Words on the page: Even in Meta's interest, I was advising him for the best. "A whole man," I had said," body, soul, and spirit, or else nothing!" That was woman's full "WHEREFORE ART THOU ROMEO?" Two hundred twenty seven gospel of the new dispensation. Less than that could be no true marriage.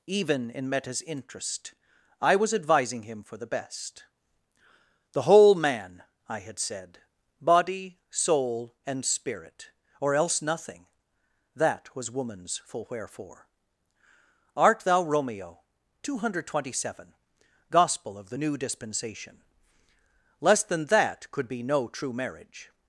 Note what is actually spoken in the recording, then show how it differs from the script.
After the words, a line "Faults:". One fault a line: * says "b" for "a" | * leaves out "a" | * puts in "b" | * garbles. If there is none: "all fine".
Even in Meta's interest, I was advising him for the best. "The whole man," I had said," body, soul, and spirit, or else nothing!" That was woman's full "WHEREFORE ART THOU ROMEO?" Two hundred twenty seven gospel of the new dispensation. Less than that could be no true marriage.
Faults:
* says "The" for "A"